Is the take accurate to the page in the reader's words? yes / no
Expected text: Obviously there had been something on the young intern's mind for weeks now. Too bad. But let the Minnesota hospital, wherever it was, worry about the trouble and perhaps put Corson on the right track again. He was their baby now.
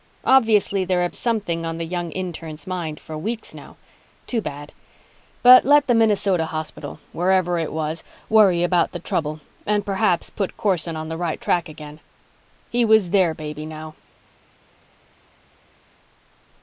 no